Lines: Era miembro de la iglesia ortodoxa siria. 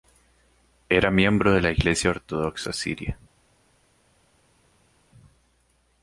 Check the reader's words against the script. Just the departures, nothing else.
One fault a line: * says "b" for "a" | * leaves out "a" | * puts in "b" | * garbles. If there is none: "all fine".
all fine